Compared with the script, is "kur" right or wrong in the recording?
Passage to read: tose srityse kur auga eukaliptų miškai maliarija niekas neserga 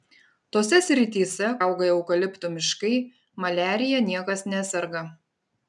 wrong